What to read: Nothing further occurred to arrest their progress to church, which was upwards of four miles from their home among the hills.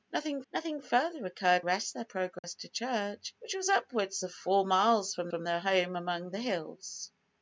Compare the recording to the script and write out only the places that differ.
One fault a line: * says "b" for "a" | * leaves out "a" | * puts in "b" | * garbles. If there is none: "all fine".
* puts in "nothing"
* leaves out "to"
* puts in "from"